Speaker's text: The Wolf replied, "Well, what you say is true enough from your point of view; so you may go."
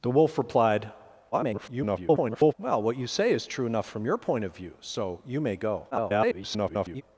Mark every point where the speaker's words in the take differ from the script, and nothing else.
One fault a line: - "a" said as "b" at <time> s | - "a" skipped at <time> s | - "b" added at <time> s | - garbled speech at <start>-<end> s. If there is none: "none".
- garbled speech at 1.3-2.5 s
- garbled speech at 5.9-7.0 s